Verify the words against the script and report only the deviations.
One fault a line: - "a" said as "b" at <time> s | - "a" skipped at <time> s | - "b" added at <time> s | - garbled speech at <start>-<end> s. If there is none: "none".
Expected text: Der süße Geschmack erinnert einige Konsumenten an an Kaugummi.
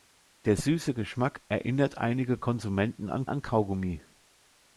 none